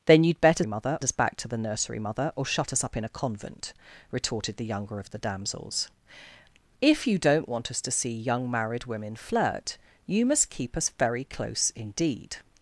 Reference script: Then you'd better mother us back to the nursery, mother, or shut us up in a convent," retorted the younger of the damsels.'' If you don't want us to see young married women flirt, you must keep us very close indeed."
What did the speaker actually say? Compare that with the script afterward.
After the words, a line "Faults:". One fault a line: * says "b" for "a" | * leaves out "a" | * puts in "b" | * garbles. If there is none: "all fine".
Then you'd better mother us back to the nursery, mother, or shut us up in a convent," retorted the younger of the damsels.'' If you don't want us to see young married women flirt, you must keep us very close indeed."
Faults:
all fine